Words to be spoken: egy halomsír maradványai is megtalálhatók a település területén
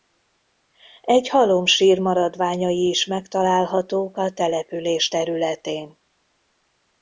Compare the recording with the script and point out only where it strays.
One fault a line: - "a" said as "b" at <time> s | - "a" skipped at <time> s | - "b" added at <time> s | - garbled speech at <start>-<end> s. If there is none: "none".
none